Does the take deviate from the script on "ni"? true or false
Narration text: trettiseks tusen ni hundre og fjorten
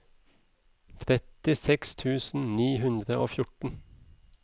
false